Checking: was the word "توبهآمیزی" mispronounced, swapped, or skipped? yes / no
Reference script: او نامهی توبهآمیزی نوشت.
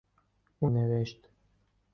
yes